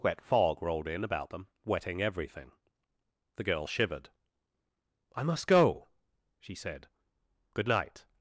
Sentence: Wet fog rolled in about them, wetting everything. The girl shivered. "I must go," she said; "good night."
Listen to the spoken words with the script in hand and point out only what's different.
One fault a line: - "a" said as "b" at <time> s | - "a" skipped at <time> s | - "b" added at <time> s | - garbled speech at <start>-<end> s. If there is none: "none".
none